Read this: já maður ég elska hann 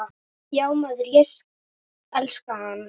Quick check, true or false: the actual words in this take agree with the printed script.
true